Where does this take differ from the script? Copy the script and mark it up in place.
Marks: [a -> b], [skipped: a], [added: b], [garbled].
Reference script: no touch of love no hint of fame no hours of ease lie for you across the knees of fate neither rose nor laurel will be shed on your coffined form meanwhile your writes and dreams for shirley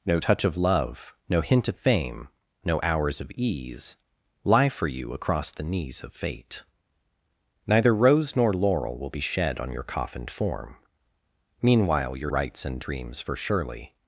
no touch of love no hint of fame no hours of ease lie for you across the knees of fate neither rose nor laurel will be shed on your coffined form meanwhile your writes and dreams for shirley